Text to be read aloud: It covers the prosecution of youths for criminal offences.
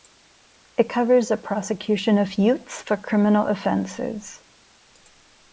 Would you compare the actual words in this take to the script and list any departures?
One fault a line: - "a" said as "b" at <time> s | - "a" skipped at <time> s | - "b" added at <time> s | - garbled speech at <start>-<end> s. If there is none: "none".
none